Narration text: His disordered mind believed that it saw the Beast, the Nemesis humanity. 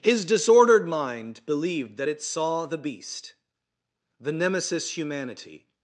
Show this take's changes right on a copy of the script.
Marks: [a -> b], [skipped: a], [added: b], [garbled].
His disordered mind believed that it saw the Beast, the Nemesis humanity.